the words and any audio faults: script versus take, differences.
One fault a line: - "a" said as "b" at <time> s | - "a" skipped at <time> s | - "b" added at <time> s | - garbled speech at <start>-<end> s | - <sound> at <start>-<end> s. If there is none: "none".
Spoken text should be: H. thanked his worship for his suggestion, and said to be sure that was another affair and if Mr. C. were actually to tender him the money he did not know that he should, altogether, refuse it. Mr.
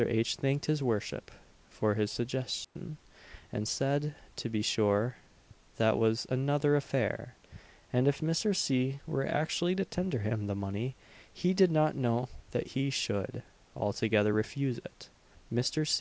- dropout at 2.6-2.8 s